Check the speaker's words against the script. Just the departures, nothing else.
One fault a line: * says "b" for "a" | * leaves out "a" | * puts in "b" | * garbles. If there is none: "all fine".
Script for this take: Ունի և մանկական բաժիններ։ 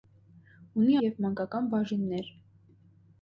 all fine